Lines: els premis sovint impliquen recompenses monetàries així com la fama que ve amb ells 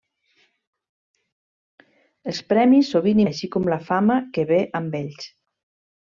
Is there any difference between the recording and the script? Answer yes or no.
yes